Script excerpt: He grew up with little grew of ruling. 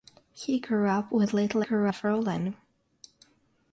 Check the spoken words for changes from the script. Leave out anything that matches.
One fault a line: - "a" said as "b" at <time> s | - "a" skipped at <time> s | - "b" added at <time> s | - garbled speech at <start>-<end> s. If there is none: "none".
none